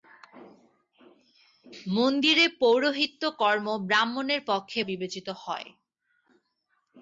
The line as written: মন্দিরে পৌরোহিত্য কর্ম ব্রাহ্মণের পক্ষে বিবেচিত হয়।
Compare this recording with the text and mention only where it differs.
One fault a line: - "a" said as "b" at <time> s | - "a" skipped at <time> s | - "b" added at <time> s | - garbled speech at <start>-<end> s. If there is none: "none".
none